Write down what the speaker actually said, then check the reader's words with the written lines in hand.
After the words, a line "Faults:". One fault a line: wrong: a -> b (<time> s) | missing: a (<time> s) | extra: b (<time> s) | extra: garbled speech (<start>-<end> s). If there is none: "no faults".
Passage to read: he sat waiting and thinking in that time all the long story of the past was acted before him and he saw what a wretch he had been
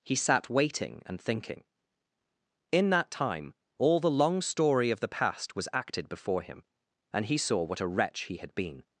he sat waiting and thinking in that time all the long story of the past was acted before him and he saw what a wretch he had been
Faults:
no faults